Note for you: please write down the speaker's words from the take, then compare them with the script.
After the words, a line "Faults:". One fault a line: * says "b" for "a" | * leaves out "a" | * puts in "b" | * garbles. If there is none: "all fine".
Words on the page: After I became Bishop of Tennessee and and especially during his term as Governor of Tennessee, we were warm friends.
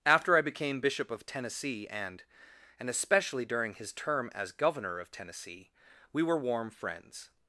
After I became Bishop of Tennessee and and especially during his term as Governor of Tennessee, we were warm friends.
Faults:
all fine